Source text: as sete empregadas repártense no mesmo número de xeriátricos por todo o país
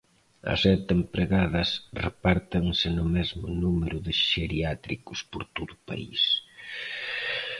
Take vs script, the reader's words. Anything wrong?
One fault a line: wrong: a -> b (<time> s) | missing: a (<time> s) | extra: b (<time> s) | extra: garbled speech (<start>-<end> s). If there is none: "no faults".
no faults